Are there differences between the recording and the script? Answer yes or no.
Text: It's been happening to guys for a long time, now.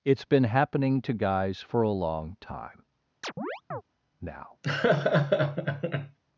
no